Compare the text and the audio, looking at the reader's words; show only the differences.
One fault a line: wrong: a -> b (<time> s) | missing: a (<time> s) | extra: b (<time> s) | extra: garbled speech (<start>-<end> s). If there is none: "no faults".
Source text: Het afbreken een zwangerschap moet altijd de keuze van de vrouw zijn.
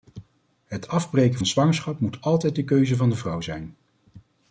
no faults